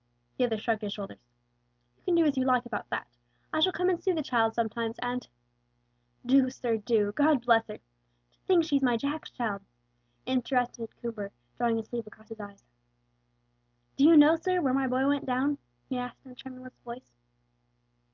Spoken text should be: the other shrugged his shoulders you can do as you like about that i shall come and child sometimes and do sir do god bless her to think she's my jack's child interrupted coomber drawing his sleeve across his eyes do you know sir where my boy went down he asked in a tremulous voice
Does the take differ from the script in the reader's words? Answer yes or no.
yes